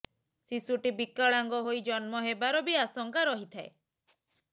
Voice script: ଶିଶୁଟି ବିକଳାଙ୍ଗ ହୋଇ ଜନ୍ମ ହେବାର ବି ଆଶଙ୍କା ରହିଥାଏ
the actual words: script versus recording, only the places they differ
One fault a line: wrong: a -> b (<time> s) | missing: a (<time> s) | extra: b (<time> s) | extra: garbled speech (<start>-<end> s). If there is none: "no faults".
no faults